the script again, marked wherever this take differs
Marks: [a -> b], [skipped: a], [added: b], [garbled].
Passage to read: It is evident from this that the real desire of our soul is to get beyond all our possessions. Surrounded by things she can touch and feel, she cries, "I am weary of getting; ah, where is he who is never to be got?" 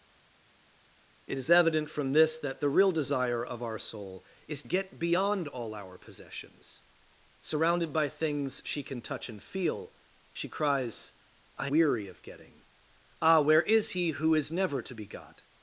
It is evident from this that the real desire of our soul is [skipped: to] get beyond all our possessions. Surrounded by things she can touch and feel, she cries, "I [skipped: am] weary of getting; ah, where is he who is never to be got?"